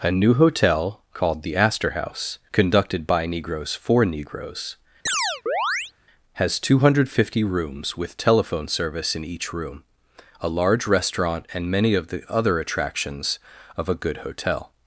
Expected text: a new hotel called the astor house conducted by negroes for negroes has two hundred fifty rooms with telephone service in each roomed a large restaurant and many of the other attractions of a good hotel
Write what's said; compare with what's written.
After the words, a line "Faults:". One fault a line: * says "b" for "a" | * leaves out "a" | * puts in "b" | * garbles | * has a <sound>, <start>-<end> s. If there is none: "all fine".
a new hotel called the astor house conducted by negroes for negroes has two hundred fifty rooms with telephone service in each room a large restaurant and many of the other attractions of a good hotel
Faults:
* has a chirp, 5.1-5.9 s
* says "room" for "roomed"